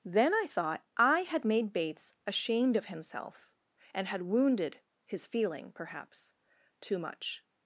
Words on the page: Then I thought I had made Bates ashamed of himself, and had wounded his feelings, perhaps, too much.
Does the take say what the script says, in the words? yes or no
no